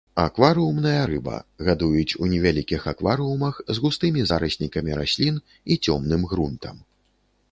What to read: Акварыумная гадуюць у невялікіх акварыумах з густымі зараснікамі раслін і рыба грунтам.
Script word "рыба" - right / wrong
wrong